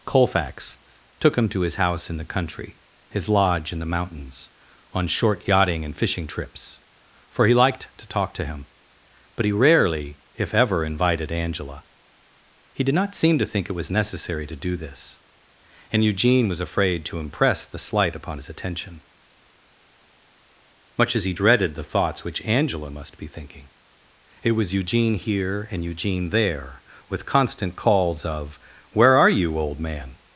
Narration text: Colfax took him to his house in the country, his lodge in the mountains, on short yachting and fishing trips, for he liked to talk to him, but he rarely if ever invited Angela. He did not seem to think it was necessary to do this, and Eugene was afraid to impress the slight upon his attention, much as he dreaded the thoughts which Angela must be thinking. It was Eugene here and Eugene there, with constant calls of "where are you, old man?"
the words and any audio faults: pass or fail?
pass